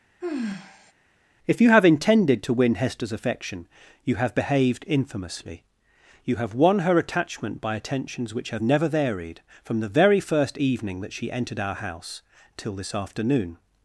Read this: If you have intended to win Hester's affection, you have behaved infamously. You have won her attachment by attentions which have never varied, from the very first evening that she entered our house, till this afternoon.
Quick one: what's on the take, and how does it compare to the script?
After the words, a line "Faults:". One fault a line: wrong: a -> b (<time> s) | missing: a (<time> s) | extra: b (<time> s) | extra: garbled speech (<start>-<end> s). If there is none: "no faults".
If you have intended to win Hester's affection, you have behaved infamously. You have won her attachment by attentions which have never varied, from the very first evening that she entered our house, till this afternoon.
Faults:
no faults